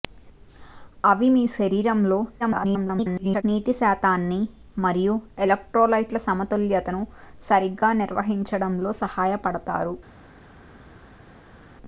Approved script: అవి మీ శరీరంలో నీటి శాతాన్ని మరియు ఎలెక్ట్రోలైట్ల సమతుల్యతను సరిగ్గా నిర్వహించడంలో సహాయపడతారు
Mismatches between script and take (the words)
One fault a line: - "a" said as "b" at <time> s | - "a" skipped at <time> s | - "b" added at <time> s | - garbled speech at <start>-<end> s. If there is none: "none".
- garbled speech at 2.4-3.4 s